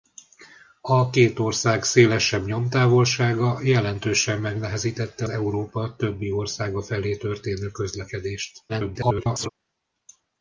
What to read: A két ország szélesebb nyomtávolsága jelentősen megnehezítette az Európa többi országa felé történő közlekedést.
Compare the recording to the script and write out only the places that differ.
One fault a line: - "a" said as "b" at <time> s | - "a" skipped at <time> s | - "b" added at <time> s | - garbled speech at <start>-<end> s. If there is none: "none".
- "az" skipped at 5.3 s
- garbled speech at 8.7-9.5 s